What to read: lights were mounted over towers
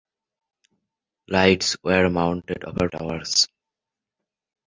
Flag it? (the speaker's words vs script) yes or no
no